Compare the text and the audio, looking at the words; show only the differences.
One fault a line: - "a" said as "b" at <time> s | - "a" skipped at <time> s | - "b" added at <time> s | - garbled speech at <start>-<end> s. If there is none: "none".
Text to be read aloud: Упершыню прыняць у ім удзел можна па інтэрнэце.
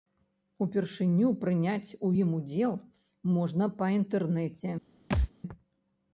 none